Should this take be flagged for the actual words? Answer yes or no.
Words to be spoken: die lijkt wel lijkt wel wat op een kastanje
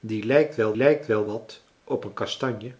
no